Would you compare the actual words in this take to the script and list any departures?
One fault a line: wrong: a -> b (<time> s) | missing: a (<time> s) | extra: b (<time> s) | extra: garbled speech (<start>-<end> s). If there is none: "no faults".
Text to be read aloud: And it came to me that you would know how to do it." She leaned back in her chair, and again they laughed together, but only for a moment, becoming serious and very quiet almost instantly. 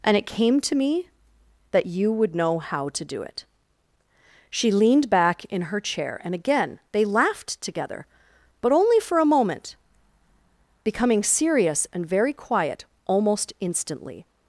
no faults